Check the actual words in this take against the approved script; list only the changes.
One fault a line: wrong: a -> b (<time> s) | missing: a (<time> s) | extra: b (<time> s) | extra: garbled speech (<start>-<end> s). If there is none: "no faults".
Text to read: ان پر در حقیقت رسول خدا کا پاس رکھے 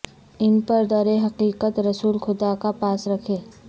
no faults